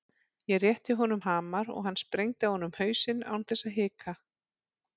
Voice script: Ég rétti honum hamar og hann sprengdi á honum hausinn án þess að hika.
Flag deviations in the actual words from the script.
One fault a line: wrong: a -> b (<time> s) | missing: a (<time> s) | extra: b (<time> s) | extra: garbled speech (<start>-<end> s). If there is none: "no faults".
no faults